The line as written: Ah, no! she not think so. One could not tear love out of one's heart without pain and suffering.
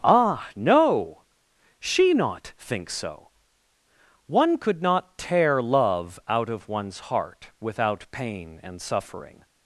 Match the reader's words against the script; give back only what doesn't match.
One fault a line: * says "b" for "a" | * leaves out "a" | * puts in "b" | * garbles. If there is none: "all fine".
all fine